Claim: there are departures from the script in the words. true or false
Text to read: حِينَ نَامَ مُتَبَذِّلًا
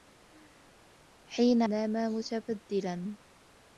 false